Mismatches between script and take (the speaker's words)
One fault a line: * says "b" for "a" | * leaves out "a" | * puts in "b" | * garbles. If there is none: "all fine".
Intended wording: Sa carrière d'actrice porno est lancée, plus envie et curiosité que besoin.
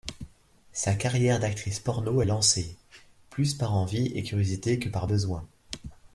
* puts in "par"
* puts in "par"